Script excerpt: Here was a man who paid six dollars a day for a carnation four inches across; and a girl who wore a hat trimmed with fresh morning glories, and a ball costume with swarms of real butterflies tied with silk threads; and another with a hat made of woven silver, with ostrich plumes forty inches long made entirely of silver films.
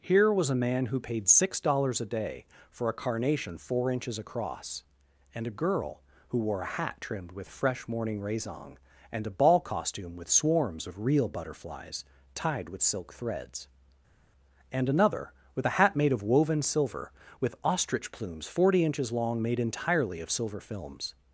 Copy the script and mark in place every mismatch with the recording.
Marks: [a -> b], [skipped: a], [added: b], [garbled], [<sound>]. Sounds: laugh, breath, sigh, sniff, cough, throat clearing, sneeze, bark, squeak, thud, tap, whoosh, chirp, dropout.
Here was a man who paid six dollars a day for a carnation four inches across; and a girl who wore a hat trimmed with fresh morning [glories, -> raisong] and a ball costume with swarms of real butterflies tied with silk threads; and another with a hat made of woven silver, with ostrich plumes forty inches long made entirely of silver films.